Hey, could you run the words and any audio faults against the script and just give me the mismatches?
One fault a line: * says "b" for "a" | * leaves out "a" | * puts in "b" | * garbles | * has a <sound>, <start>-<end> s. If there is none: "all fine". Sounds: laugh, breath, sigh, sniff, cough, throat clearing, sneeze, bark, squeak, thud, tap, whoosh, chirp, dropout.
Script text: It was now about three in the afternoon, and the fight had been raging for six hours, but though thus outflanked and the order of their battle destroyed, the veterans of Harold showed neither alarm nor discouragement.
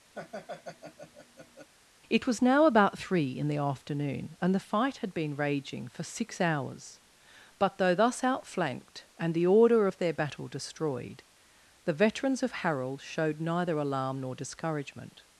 * has a laugh, 0.1-1.7 s